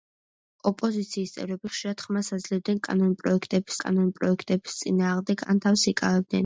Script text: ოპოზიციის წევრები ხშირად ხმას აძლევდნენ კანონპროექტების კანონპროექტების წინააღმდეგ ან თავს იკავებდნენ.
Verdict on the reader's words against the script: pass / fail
pass